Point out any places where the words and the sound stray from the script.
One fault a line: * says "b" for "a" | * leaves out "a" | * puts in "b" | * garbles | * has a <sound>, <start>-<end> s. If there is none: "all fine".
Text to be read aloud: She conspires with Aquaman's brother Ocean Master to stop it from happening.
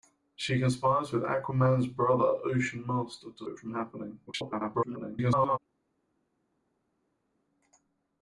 * leaves out "stop"
* garbles